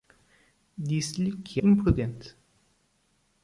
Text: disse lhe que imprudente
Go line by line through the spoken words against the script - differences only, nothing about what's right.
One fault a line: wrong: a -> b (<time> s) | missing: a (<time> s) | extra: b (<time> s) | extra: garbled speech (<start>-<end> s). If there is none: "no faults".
no faults